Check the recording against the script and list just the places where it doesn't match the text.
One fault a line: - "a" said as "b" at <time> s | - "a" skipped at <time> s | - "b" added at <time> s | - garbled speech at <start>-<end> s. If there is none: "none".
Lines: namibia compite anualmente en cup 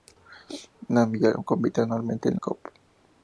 none